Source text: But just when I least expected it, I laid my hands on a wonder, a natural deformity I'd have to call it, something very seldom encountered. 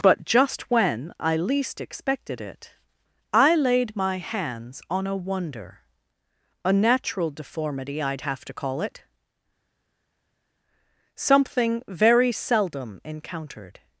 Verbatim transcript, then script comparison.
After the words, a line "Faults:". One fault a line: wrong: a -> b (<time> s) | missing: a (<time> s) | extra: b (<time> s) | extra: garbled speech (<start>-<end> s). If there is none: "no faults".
But just when I least expected it, I laid my hands on a wonder, a natural deformity I'd have to call it, something very seldom encountered.
Faults:
no faults